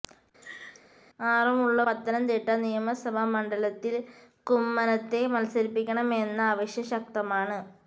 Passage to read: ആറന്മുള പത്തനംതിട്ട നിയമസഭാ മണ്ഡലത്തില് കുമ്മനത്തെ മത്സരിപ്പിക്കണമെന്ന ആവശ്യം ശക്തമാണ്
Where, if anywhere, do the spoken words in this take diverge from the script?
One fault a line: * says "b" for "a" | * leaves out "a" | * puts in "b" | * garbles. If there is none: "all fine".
all fine